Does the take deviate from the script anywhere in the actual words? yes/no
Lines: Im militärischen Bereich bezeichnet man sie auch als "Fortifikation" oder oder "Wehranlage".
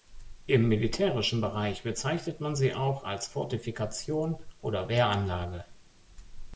yes